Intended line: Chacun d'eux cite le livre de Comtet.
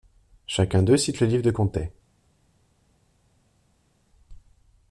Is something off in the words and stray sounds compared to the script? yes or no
no